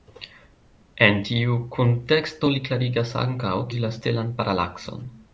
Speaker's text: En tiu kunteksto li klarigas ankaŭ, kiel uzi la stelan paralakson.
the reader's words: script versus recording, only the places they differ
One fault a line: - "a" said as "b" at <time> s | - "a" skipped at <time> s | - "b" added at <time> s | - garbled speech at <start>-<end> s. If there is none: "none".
- "kiel" skipped at 3.5 s